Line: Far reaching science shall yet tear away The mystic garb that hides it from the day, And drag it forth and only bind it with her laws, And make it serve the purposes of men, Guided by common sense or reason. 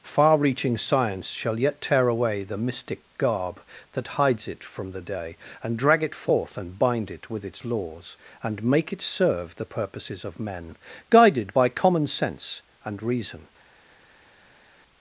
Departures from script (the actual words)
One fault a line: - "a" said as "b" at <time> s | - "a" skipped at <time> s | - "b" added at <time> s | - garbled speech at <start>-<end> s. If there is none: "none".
- "only" skipped at 6.8 s
- "her" said as "its" at 7.4 s
- "or" said as "and" at 12.8 s